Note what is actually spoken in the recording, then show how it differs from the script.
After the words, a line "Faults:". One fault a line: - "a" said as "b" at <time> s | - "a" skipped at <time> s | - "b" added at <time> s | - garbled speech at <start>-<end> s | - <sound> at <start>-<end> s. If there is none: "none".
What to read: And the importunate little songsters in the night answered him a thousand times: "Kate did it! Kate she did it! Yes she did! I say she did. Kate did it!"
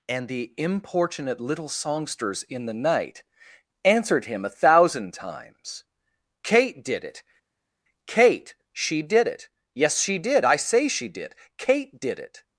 And the importunate little songsters in the night answered him a thousand times: "Kate did it! Kate she did it! Yes she did! I say she did. Kate did it!"
Faults:
none